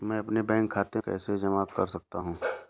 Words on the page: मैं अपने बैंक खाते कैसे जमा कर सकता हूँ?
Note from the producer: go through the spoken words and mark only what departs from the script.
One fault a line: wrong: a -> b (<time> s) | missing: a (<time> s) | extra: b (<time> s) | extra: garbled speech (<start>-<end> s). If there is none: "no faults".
no faults